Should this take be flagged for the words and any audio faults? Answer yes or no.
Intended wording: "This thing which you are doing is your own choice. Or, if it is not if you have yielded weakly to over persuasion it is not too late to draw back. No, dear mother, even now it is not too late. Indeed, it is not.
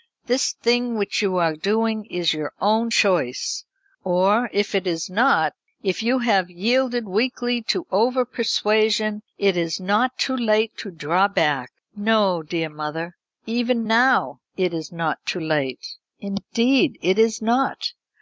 no